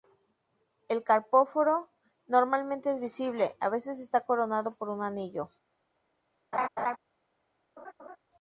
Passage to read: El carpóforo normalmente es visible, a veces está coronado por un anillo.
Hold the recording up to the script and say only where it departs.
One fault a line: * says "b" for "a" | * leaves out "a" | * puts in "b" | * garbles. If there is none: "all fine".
all fine